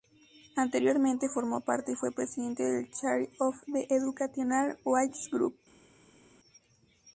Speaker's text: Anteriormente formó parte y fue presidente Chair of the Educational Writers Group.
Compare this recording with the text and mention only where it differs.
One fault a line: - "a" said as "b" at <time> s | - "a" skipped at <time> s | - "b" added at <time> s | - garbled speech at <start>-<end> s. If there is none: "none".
- "del" added at 2.6 s